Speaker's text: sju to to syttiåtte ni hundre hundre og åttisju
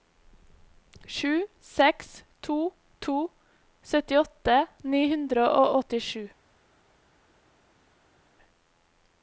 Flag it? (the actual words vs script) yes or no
yes